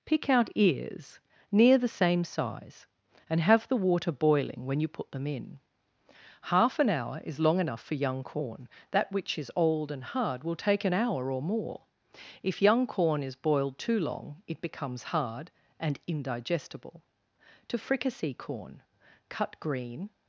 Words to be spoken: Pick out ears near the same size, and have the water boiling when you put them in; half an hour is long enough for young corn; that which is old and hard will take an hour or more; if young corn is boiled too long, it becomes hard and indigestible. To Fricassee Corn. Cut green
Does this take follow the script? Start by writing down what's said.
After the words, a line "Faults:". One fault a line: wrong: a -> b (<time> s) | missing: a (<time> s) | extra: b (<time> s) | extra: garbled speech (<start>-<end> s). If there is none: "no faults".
Pick out ears near the same size, and have the water boiling when you put them in; half an hour is long enough for young corn; that which is old and hard will take an hour or more; if young corn is boiled too long, it becomes hard and indigestible. To Fricassee Corn. Cut green
Faults:
no faults